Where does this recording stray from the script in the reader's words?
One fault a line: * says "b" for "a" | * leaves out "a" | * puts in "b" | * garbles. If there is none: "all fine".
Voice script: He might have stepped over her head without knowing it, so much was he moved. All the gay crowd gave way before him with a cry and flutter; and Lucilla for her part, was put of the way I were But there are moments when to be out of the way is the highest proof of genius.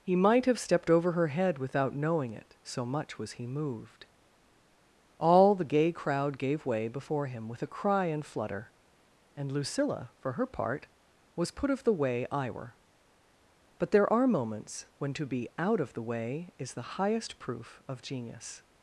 all fine